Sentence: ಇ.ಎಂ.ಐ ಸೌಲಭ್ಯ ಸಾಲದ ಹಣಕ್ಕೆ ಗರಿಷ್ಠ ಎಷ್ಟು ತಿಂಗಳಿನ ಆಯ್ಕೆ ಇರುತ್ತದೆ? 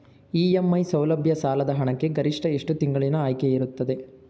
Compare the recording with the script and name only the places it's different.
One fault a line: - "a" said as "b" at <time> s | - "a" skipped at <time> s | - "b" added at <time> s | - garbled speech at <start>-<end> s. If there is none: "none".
none